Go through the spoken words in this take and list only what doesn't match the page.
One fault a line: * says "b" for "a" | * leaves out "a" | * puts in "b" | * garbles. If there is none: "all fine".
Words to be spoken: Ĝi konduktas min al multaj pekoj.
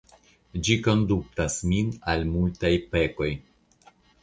all fine